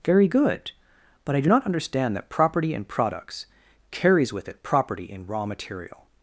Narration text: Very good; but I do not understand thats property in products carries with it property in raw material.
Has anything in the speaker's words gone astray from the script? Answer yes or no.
yes